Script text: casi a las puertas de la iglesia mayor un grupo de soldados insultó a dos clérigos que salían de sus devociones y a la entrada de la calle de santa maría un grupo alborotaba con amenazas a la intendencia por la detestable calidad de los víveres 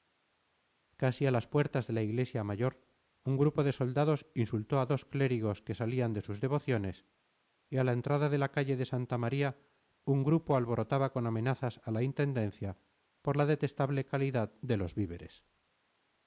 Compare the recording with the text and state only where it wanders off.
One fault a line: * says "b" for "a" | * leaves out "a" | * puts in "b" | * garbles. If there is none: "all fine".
all fine